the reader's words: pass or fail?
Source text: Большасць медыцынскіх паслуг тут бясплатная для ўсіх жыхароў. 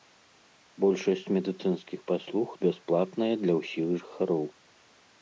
fail